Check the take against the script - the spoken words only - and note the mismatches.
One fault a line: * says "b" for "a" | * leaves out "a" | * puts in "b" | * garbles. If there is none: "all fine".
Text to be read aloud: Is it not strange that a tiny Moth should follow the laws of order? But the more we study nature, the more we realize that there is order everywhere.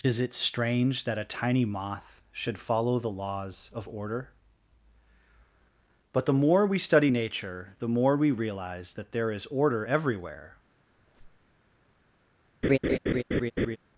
* leaves out "not"